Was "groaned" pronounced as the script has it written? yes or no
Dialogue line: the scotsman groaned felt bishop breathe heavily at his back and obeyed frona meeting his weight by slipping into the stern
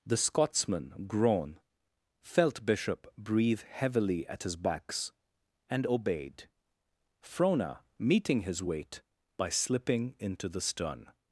no